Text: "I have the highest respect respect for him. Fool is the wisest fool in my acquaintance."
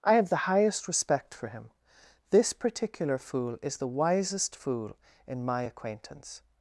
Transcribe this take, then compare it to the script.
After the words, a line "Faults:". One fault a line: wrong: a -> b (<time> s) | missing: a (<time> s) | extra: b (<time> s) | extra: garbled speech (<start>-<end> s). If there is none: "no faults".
"I have the highest respect for him. This particular fool is the wisest fool in my acquaintance."
Faults:
missing: respect (1.3 s)
extra: This particular (2.3 s)